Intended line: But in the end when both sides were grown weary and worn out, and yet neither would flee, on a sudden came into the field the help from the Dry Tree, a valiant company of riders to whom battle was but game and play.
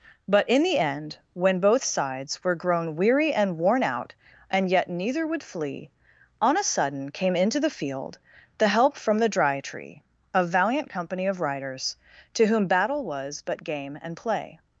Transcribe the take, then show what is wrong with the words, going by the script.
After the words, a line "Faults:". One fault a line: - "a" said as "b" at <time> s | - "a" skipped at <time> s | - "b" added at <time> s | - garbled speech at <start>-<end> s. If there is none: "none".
But in the end when both sides were grown weary and worn out, and yet neither would flee, on a sudden came into the field the help from the Dry Tree, a valiant company of riders to whom battle was but game and play.
Faults:
none